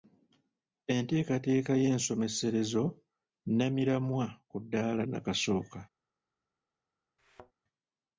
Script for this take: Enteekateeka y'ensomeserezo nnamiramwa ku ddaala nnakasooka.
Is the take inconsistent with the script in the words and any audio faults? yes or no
yes